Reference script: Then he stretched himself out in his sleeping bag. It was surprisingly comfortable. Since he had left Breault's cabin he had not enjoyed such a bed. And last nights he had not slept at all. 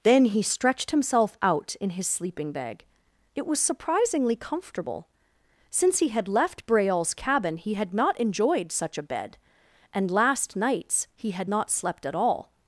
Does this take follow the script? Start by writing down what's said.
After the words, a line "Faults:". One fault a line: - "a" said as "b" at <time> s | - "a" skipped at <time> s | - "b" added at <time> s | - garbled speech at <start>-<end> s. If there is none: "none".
Then he stretched himself out in his sleeping bag. It was surprisingly comfortable. Since he had left Breault's cabin he had not enjoyed such a bed. And last nights he had not slept at all.
Faults:
none